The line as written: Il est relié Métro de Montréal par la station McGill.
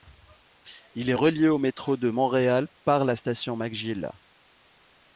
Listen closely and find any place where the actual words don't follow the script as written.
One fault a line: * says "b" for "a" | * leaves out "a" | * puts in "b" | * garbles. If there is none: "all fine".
* puts in "au"